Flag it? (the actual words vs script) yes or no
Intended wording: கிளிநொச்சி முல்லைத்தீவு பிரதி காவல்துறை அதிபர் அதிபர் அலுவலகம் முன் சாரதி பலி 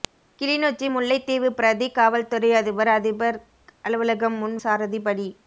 no